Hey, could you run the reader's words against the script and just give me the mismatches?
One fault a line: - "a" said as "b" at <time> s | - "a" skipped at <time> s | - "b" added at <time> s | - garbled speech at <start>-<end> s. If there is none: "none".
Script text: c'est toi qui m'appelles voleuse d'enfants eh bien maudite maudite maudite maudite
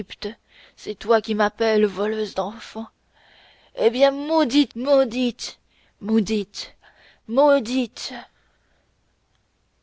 none